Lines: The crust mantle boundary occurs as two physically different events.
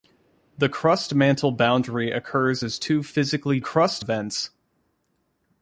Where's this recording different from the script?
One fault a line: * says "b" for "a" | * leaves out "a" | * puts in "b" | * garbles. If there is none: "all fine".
* says "crust" for "different"